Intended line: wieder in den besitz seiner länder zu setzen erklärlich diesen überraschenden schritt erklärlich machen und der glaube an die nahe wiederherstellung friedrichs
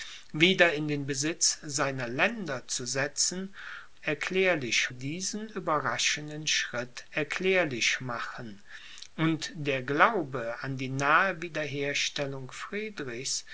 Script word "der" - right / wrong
right